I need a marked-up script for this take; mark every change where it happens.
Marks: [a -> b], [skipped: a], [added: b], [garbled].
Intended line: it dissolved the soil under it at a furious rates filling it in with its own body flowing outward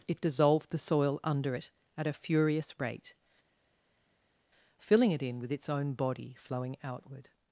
it dissolved the soil under it at a furious [rates -> rate] filling it in with its own body flowing outward